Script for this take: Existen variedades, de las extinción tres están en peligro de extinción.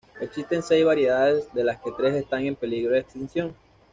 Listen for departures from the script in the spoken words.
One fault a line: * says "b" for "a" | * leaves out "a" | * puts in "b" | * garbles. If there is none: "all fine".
* puts in "seis"
* says "que" for "extinción"